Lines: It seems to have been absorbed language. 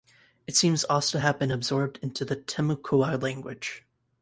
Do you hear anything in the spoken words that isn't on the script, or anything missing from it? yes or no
yes